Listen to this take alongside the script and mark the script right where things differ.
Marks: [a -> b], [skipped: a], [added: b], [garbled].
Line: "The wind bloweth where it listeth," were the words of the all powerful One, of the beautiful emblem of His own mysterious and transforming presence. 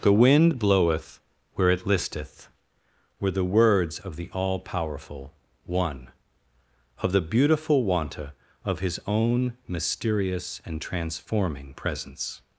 "The wind bloweth where it listeth," were the words of the all powerful One, of the beautiful [emblem -> wanta] of His own mysterious and transforming presence.